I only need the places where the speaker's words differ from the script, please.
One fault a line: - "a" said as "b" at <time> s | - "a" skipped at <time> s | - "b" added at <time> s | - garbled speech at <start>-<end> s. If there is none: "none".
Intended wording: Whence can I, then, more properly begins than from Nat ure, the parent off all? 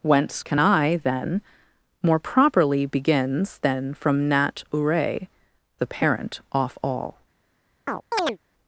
none